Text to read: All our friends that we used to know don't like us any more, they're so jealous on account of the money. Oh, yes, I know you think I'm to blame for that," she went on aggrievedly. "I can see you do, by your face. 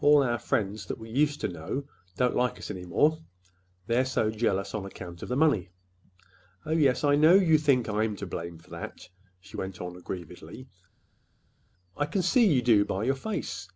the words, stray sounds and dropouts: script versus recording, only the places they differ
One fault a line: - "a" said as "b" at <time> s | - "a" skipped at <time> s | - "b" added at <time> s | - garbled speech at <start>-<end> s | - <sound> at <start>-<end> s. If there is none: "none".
none